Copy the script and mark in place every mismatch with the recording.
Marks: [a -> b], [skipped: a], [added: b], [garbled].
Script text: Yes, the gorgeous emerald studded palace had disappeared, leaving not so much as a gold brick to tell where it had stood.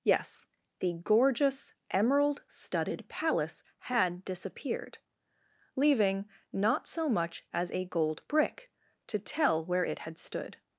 Yes, the gorgeous emerald studded palace had disappeared, leaving not so much as a gold brick to tell where it had stood.